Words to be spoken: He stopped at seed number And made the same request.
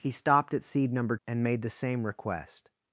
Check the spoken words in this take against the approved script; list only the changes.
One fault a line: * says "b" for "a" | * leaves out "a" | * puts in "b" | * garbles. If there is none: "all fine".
all fine